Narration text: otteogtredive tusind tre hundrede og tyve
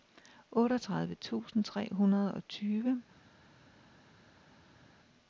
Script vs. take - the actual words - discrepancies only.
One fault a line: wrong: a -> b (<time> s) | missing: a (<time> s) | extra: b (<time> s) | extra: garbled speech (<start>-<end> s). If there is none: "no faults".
no faults